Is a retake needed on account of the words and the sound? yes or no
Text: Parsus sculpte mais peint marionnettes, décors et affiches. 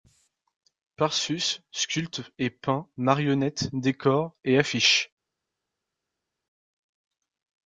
yes